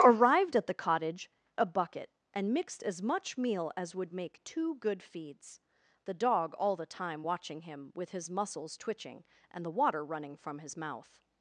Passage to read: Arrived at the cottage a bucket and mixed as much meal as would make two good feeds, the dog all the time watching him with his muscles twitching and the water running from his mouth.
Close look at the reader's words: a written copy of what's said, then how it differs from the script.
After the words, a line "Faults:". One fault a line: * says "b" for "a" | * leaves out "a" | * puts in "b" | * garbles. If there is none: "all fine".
Arrived at the cottage a bucket and mixed as much meal as would make two good feeds, the dog all the time watching him with his muscles twitching and the water running from his mouth.
Faults:
all fine